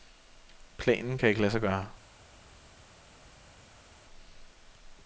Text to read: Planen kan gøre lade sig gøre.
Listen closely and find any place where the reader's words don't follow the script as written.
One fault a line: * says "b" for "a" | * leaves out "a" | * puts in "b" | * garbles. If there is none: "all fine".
* says "ikke" for "gøre"